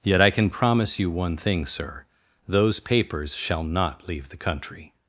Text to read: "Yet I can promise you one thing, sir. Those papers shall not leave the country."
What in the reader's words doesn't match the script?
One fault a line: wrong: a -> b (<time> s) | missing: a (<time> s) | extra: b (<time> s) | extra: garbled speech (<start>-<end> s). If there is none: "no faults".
no faults